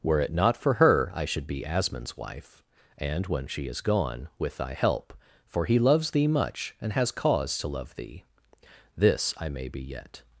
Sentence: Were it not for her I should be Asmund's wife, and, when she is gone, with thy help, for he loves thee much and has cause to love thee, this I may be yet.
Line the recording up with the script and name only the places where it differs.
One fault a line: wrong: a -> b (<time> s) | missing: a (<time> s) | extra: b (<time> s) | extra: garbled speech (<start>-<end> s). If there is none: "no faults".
no faults